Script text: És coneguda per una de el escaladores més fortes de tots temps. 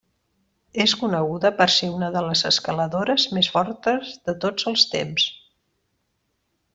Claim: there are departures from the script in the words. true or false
true